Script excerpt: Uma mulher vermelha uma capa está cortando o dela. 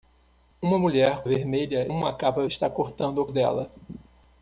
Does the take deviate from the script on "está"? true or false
false